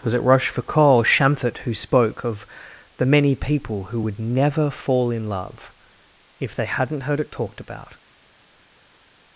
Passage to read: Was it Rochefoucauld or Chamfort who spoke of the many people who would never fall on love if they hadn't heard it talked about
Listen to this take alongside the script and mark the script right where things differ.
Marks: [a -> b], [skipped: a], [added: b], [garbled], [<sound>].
Was it Rochefoucauld or Chamfort who spoke of the many people who would never fall [on -> in] love if they hadn't heard it talked about